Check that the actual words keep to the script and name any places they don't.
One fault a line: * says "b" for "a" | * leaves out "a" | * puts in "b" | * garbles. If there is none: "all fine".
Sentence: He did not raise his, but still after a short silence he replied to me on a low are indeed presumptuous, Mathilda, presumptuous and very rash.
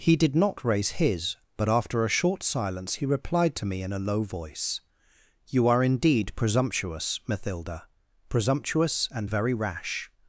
* leaves out "still"
* says "in" for "on"
* puts in "voice You"